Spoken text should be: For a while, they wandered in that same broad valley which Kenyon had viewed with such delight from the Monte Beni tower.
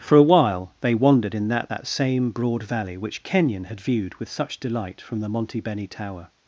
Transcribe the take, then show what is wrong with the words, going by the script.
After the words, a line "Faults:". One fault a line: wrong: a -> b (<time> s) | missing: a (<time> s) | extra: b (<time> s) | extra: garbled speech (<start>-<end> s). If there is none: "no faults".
For a while, they wandered in that that same broad valley which Kenyon had viewed with such delight from the Monte Beni tower.
Faults:
extra: that (1.7 s)